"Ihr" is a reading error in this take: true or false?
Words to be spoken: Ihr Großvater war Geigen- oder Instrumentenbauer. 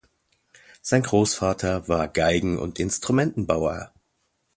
true